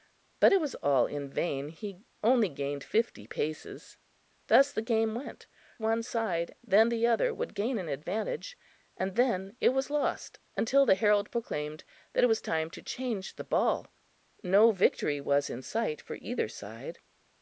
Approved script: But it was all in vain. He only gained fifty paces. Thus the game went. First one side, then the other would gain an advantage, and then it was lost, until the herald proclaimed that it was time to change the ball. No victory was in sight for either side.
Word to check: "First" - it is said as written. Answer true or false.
false